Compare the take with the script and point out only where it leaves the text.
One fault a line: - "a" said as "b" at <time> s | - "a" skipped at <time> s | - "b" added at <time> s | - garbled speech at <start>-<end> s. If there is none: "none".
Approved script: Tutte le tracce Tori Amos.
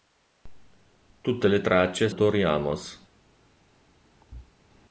none